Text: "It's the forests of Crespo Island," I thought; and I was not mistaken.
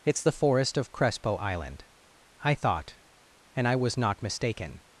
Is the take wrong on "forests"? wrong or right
wrong